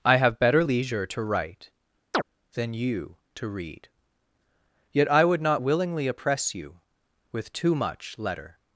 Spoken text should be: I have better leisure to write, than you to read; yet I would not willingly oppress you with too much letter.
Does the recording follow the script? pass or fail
pass